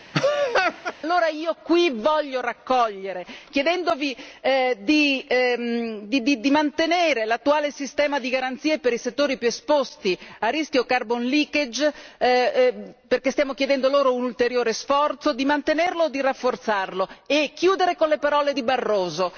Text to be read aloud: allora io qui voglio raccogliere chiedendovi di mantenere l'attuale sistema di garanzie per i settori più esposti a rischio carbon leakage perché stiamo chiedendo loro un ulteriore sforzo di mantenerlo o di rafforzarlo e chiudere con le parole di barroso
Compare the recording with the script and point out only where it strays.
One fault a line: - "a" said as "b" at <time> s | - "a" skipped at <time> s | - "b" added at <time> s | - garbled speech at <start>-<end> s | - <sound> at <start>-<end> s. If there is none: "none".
- laugh at 0.1-0.9 s